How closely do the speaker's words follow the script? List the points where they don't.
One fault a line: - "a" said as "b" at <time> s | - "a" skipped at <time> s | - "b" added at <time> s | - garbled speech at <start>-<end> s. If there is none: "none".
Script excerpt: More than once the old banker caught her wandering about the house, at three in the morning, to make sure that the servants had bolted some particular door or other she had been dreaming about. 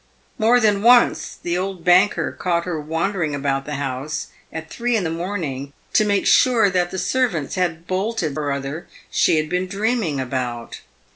- "some particular door" skipped at 8.4 s